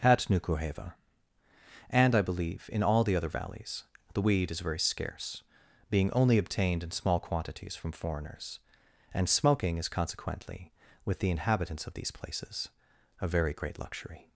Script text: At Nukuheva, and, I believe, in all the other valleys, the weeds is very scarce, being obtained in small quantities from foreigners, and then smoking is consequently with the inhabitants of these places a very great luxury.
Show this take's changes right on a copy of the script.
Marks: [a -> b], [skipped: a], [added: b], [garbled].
At Nukuheva, and, I believe, in all the other valleys, the [weeds -> weed] is very scarce, being [added: only] obtained in small quantities from foreigners, and [skipped: then] smoking is consequently with the inhabitants of these places a very great luxury.